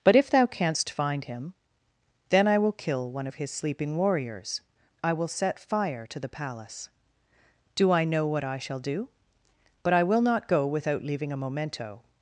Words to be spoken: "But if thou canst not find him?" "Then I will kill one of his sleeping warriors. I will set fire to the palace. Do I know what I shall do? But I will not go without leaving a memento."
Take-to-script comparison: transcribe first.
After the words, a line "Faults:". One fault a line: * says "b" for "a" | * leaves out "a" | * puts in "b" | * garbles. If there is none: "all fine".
"But if thou canst find him?" "Then I will kill one of his sleeping warriors. I will set fire to the palace. Do I know what I shall do? But I will not go without leaving a memento."
Faults:
* leaves out "not"